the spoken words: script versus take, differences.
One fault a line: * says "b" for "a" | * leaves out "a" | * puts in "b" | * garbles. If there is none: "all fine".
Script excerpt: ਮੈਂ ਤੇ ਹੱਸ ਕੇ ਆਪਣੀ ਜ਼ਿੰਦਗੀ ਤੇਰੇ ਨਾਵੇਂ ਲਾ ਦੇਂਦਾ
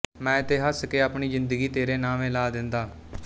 all fine